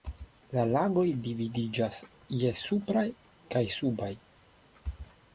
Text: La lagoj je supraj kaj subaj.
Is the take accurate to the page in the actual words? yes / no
no